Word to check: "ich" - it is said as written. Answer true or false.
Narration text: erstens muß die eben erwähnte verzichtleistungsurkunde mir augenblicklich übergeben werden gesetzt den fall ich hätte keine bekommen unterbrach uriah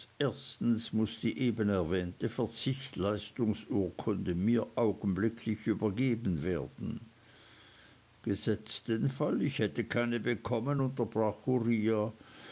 true